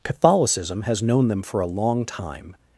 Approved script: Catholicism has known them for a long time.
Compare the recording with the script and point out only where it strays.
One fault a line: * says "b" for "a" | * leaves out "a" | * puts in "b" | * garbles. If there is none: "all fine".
all fine